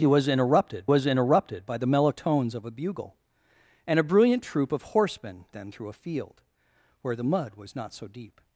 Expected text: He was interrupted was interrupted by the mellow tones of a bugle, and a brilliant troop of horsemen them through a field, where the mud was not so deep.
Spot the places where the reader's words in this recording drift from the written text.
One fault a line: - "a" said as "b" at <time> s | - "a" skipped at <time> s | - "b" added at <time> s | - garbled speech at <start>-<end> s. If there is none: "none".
none